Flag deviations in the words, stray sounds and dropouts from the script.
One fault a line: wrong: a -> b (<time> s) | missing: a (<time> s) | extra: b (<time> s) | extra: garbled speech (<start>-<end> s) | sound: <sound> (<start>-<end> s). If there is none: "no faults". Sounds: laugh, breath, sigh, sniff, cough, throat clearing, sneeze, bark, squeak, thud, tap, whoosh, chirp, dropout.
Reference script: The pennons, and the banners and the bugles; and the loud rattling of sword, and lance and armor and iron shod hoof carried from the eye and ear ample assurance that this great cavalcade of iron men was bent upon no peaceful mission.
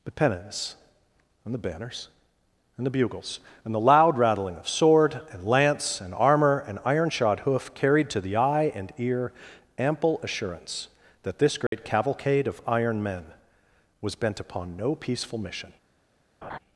wrong: from -> to (8.1 s)
sound: dropout (11.7-11.7 s)
sound: laugh (16.4-16.6 s)